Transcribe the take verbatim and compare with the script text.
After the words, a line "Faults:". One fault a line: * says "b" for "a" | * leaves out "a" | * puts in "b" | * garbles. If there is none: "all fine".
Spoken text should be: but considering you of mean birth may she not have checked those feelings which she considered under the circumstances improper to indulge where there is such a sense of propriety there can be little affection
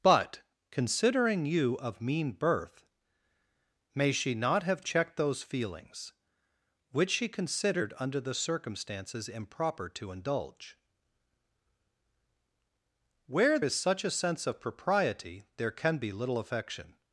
but considering you of mean birth may she not have checked those feelings which she considered under the circumstances improper to indulge where is such a sense of propriety there can be little affection
Faults:
* leaves out "there"